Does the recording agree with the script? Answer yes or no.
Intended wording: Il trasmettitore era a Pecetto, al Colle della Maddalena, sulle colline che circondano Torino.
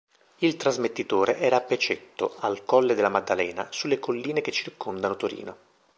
yes